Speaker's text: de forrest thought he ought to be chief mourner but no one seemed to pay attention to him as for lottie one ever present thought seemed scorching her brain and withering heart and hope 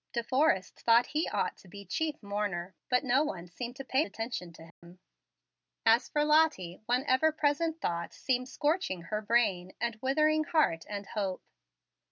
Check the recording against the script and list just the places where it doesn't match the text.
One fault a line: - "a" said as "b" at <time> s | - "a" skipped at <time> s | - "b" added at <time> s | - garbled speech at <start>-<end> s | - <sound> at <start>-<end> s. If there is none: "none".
- dropout at 4.7-4.8 s